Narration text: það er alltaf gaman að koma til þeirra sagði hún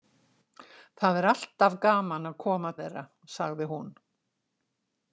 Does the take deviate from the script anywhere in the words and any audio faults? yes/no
yes